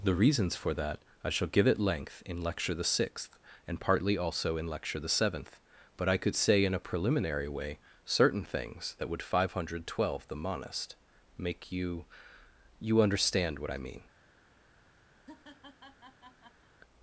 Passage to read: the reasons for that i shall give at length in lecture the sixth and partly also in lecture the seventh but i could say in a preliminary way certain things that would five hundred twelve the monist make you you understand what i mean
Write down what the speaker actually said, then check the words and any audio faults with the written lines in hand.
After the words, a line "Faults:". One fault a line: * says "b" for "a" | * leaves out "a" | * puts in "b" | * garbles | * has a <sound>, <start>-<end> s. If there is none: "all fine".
the reasons for that i shall give at length in lecture the sixth and partly also in lecture the seventh but i could say in a preliminary way certain things that would five hundred twelve the monist make you you understand what i mean
Faults:
* has a laugh, 15.2-16.7 s